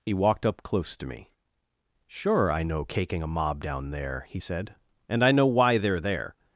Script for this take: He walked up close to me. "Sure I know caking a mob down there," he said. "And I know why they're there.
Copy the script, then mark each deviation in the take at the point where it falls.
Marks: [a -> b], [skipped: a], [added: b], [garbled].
He walked up close to me. "Sure I know caking a mob down there," he said. "And I know why they're there.